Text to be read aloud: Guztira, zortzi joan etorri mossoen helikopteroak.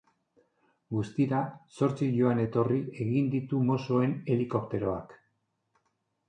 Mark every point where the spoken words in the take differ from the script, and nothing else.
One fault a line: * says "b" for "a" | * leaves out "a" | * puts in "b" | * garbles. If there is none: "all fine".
* puts in "egin ditu"